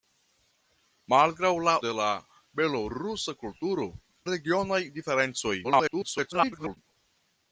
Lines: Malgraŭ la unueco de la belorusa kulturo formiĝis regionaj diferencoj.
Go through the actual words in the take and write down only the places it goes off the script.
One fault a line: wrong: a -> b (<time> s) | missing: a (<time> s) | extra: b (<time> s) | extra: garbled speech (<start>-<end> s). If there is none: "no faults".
missing: unueco (1.8 s)
missing: formiĝis (3.9 s)
extra: garbled speech (5.6-6.8 s)